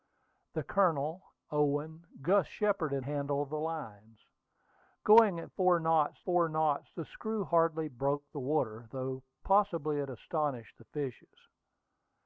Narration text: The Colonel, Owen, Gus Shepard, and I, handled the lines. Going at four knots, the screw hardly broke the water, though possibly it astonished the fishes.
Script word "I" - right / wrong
wrong